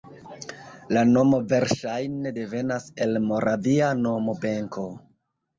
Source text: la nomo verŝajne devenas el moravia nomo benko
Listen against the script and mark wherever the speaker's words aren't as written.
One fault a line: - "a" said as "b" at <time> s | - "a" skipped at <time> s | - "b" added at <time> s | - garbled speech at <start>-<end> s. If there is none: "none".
none